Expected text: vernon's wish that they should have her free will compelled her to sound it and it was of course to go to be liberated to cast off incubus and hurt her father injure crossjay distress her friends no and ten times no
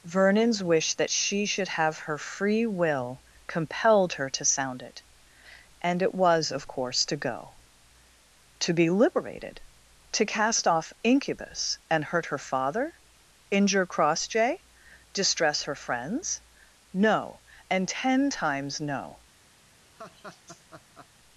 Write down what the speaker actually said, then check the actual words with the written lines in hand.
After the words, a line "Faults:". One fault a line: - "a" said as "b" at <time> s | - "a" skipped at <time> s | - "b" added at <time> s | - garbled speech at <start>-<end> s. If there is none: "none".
vernon's wish that she should have her free will compelled her to sound it and it was of course to go to be liberated to cast off incubus and hurt her father injure crossjay distress her friends no and ten times no
Faults:
- "they" said as "she" at 1.1 s